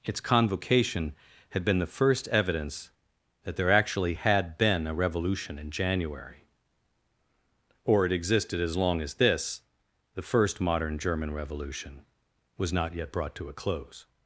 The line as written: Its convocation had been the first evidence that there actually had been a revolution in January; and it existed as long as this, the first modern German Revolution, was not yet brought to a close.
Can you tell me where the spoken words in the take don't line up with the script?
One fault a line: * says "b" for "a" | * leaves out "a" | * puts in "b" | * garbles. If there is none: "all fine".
* says "or" for "and"